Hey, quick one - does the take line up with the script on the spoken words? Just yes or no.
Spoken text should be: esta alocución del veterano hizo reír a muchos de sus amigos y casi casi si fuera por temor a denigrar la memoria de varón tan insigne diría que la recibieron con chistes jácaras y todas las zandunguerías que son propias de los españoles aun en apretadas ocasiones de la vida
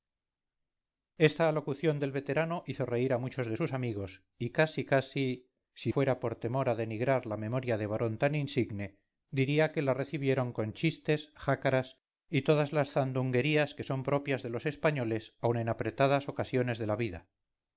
yes